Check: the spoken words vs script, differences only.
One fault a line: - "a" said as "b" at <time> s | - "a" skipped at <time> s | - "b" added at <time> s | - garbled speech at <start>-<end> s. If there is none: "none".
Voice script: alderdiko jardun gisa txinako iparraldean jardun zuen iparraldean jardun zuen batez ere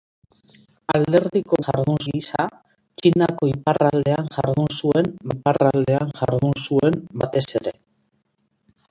none